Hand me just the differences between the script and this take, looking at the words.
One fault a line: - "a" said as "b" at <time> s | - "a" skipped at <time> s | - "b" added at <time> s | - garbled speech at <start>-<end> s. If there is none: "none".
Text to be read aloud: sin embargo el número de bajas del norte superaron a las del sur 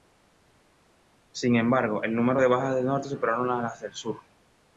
none